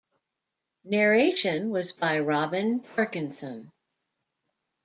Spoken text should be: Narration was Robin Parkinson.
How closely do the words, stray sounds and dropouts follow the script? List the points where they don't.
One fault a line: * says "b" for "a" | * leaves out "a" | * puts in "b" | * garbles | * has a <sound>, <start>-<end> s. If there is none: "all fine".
* puts in "by"